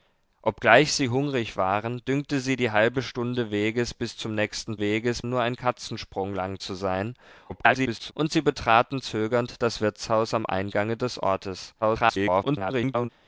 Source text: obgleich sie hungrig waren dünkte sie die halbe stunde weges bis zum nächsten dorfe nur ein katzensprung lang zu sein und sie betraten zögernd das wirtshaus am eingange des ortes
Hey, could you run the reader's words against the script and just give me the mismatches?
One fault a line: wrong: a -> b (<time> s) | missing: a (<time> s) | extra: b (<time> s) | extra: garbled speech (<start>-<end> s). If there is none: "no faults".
wrong: dorfe -> weges (4.8 s)
extra: garbled speech (7.5-8.1 s)
extra: garbled speech (11.8-13.1 s)